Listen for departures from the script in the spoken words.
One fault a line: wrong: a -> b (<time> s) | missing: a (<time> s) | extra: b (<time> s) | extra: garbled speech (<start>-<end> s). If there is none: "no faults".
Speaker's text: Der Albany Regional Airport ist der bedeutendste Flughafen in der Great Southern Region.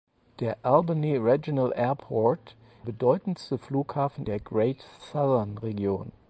missing: ist der (2.6 s)
missing: in (4.2 s)